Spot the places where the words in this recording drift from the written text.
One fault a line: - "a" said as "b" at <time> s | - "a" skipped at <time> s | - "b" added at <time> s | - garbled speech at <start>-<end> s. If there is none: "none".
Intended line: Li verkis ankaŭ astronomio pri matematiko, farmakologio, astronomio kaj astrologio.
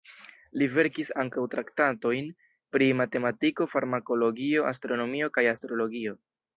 - "astronomio" said as "traktatojn" at 1.6 s